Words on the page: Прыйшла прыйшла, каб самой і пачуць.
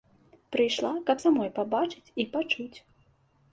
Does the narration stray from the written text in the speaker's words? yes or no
yes